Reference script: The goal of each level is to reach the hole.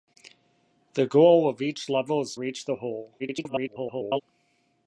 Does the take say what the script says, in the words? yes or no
no